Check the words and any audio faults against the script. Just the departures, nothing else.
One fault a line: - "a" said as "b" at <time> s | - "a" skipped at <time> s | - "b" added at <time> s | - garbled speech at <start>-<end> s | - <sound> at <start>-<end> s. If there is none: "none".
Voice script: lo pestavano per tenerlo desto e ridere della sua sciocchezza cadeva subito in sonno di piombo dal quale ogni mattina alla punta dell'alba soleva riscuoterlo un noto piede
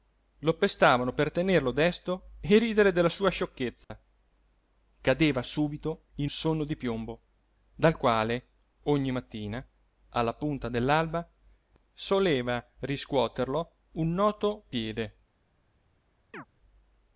- dropout at 3.8-3.9 s
- chirp at 16.3-16.5 s